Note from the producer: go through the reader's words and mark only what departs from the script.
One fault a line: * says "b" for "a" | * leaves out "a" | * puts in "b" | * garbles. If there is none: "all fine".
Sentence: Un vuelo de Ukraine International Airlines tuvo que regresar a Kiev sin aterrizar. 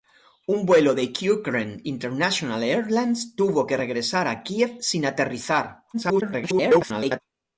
* garbles